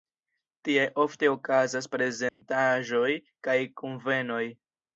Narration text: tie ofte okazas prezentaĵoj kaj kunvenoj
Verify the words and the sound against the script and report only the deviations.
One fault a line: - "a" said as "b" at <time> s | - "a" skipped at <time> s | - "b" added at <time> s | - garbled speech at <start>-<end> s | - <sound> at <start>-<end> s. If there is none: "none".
- dropout at 2.3-2.4 s